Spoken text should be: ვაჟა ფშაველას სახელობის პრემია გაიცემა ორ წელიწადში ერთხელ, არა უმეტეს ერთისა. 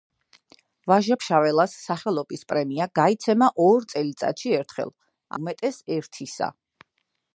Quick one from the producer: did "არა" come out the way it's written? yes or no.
no